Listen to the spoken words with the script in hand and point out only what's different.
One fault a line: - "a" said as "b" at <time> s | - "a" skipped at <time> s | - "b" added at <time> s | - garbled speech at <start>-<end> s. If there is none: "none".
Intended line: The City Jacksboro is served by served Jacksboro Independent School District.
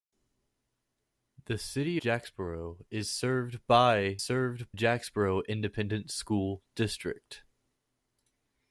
none